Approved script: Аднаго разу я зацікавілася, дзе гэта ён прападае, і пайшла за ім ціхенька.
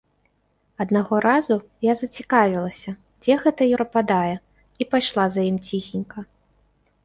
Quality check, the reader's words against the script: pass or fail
fail